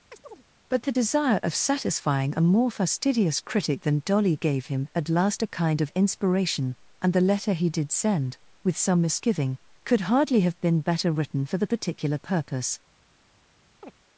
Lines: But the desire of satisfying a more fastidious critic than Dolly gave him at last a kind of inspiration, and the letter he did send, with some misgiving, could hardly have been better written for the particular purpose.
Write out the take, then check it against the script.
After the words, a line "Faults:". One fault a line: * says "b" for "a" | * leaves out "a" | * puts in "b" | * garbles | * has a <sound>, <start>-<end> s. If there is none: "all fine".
But the desire of satisfying a more fastidious critic than Dolly gave him at last a kind of inspiration, and the letter he did send, with some misgiving, could hardly have been better written for the particular purpose.
Faults:
* has a chirp, 0.1-0.4 s
* has a chirp, 13.8-13.9 s